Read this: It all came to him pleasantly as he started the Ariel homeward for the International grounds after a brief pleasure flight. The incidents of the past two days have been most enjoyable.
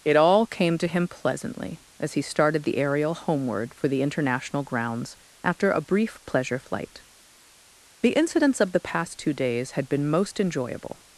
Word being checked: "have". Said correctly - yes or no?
no